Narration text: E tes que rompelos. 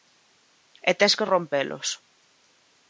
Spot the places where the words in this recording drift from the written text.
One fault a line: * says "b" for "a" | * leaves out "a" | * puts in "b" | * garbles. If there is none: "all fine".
all fine